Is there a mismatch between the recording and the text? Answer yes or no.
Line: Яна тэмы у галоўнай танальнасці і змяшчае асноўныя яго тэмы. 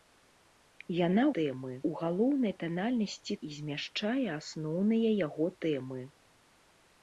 no